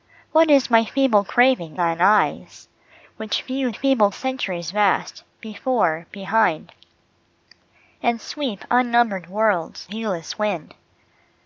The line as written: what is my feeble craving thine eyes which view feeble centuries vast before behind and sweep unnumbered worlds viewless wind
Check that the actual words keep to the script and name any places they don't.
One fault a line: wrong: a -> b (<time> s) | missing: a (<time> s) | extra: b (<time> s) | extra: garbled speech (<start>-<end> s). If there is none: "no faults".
no faults